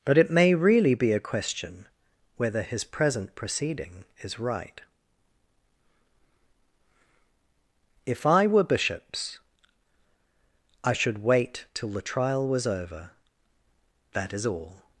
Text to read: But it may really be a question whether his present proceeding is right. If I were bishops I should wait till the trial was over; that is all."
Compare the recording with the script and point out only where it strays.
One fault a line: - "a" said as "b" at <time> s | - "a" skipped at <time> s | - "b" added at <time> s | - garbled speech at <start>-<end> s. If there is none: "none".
none